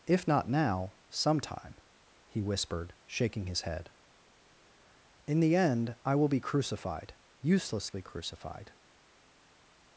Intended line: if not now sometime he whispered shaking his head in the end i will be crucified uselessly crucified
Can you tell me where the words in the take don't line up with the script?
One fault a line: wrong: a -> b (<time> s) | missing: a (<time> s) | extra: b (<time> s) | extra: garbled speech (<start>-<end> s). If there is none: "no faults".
no faults